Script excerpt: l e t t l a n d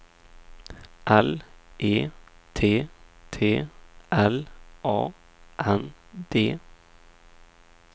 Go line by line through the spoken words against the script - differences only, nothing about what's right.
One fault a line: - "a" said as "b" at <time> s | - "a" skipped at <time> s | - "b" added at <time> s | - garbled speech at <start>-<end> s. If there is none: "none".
none